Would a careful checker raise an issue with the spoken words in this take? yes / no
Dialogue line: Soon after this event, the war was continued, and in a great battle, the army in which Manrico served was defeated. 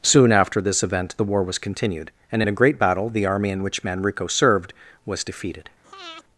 no